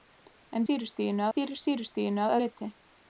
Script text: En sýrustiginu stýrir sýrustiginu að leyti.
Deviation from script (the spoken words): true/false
false